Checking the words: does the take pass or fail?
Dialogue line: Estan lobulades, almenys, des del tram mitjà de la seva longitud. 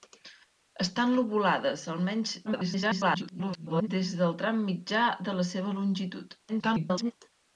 fail